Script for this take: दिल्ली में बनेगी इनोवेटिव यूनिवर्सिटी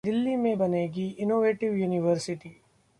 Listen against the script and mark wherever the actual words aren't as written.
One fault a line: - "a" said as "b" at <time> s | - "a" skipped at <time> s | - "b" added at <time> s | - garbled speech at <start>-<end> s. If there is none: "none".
none